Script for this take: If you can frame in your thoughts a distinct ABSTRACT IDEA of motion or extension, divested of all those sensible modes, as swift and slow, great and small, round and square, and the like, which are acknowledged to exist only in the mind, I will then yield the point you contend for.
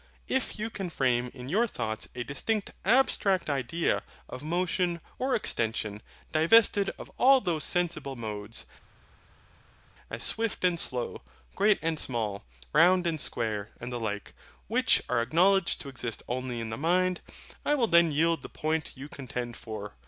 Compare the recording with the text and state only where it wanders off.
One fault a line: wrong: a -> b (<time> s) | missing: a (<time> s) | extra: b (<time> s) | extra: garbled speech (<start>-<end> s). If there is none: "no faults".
no faults